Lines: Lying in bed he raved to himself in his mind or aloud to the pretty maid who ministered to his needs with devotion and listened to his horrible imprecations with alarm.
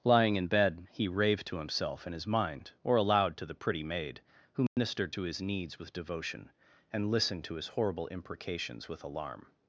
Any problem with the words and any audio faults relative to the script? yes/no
yes